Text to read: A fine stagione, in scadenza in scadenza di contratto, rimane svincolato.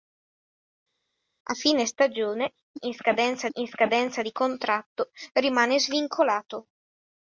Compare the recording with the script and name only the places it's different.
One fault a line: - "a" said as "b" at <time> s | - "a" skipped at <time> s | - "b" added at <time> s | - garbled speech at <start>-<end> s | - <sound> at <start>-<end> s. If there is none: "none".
none